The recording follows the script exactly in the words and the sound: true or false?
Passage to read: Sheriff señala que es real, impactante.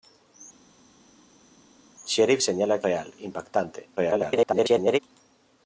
false